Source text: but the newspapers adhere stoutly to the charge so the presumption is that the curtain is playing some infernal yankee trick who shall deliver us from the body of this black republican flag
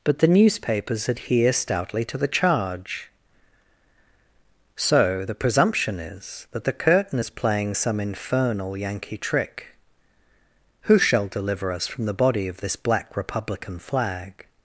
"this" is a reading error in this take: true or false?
false